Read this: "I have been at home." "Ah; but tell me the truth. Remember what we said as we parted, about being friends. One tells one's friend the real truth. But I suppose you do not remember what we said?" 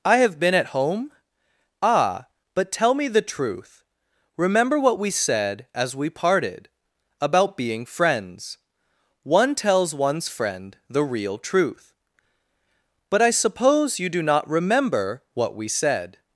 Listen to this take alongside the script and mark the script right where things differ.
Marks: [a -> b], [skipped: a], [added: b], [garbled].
"I have been at home." "Ah; but tell me the truth. Remember what we said as we parted, about being friends. One tells one's friend the real truth. But I suppose you do not remember what we said?"